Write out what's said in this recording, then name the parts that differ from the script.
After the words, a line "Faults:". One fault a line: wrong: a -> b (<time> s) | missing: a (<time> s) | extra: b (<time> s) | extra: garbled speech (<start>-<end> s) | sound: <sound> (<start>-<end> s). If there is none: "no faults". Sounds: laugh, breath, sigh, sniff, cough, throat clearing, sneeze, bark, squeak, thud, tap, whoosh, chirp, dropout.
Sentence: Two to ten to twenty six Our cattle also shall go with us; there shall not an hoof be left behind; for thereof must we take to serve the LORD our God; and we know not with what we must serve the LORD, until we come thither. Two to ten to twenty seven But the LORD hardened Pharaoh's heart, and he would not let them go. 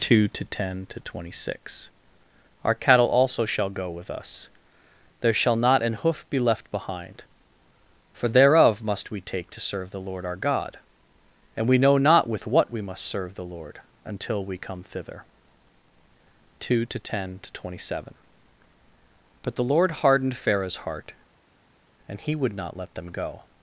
Two to ten to twenty six Our cattle also shall go with us; there shall not an hoof be left behind; for thereof must we take to serve the LORD our God; and we know not with what we must serve the LORD, until we come thither. Two to ten to twenty seven But the LORD hardened Pharaoh's heart, and he would not let them go.
Faults:
no faults